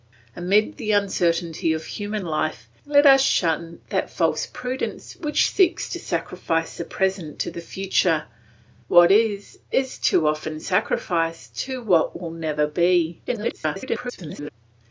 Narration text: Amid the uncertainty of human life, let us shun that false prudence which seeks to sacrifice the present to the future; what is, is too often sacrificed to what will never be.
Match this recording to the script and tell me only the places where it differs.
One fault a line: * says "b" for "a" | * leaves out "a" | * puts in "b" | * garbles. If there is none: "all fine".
* garbles